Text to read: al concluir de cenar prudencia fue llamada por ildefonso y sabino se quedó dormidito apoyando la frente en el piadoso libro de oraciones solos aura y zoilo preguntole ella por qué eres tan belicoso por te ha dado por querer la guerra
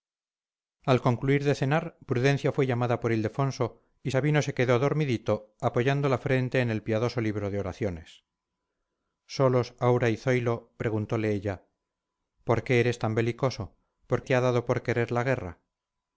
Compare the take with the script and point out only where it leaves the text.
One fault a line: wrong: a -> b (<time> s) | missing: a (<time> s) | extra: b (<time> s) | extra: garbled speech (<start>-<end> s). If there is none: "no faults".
no faults